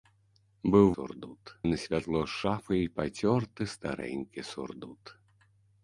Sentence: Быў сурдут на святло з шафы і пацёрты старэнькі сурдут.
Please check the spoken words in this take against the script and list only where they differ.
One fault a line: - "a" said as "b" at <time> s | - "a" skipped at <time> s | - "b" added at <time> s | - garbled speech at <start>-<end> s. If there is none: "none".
none